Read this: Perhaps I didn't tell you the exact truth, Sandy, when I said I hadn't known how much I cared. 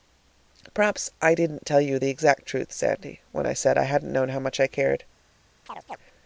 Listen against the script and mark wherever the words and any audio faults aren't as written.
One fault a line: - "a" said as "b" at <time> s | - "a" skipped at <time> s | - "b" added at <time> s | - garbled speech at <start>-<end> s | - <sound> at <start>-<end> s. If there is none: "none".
- chirp at 5.7-6.0 s